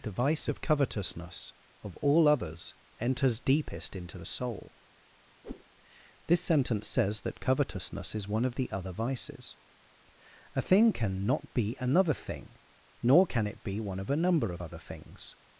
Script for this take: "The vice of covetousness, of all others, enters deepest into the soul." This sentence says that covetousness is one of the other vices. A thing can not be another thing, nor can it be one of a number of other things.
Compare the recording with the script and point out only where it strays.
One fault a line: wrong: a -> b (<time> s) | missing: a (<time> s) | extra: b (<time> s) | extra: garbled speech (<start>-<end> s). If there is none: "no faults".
no faults